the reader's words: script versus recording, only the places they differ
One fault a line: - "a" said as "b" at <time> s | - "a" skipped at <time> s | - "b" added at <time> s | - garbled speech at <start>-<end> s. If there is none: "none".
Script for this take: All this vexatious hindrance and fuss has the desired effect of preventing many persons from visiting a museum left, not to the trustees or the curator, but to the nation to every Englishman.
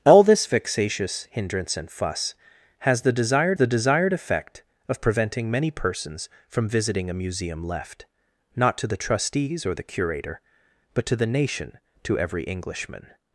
- "the desired" added at 3.6 s